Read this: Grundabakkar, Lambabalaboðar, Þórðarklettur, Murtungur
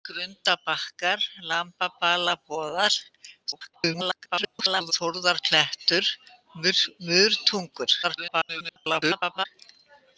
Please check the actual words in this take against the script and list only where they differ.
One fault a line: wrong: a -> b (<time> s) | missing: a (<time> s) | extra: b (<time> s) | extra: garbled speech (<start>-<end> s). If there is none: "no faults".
extra: garbled speech (3.5-4.9 s)
extra: garbled speech (8.0-9.5 s)